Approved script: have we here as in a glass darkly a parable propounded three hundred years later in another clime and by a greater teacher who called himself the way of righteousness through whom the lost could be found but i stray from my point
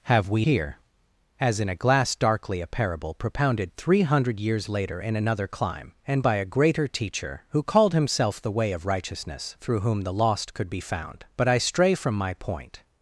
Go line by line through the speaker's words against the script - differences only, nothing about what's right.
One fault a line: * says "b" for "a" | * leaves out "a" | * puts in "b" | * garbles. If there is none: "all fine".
all fine